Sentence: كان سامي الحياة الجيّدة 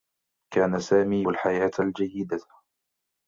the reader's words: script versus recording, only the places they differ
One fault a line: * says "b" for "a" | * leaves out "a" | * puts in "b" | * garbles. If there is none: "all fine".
all fine